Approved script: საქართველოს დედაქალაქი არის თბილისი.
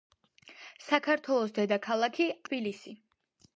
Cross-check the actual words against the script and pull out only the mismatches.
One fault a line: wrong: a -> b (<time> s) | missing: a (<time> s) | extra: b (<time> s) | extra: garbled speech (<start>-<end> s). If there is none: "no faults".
missing: არის (2.3 s)